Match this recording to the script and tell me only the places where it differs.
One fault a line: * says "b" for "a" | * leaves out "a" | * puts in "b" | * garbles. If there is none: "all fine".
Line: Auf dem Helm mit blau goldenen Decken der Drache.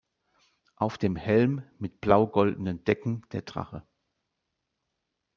all fine